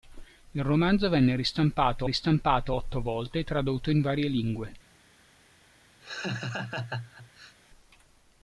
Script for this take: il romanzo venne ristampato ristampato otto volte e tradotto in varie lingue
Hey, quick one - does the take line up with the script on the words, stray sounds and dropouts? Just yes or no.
no